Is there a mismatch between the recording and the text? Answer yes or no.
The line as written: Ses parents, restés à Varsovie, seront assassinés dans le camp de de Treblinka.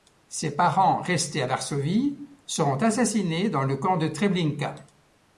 yes